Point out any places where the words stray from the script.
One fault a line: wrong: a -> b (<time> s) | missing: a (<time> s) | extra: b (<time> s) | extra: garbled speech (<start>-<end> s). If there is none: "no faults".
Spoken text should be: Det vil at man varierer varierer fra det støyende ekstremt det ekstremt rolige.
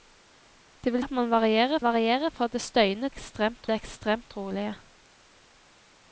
no faults